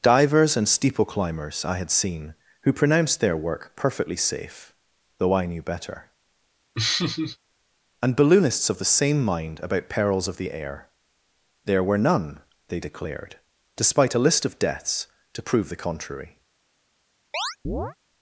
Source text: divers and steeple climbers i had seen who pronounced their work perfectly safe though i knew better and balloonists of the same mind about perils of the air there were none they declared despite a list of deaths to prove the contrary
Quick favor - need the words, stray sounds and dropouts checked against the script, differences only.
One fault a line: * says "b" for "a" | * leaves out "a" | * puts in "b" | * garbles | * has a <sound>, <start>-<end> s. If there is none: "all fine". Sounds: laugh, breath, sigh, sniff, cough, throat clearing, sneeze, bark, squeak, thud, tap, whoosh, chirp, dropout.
* has a laugh, 6.7-7.4 s
* has a chirp, 17.3-18.0 s